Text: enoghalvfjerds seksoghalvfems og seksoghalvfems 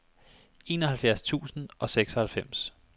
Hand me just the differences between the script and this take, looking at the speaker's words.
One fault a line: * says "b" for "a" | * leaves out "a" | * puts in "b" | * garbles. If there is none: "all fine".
* says "tusind" for "seksoghalvfems"